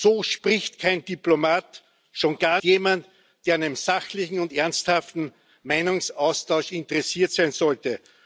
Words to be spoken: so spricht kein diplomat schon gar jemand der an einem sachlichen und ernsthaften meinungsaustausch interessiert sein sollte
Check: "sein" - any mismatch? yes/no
no